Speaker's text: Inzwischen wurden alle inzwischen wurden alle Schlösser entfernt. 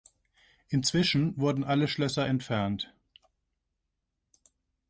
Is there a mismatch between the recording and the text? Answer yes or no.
yes